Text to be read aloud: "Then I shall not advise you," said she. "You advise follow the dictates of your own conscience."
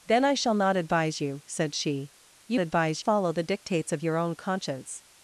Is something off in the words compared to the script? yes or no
no